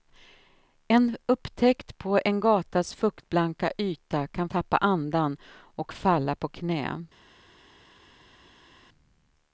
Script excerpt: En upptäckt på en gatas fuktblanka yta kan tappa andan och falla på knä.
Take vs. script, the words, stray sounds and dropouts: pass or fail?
pass